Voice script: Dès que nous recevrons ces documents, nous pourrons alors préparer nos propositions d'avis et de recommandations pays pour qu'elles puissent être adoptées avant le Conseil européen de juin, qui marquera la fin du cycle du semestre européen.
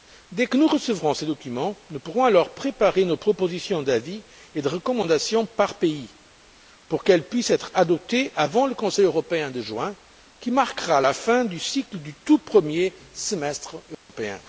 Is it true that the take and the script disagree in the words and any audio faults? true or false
true